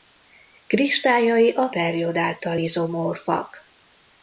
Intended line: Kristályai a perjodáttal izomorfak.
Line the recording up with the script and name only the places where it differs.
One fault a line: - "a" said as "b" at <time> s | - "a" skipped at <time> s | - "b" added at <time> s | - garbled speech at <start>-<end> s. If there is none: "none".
none